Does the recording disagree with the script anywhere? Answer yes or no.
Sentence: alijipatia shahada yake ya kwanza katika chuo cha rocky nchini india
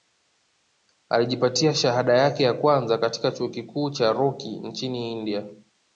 yes